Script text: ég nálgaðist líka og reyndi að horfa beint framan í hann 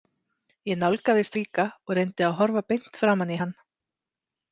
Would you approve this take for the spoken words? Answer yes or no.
yes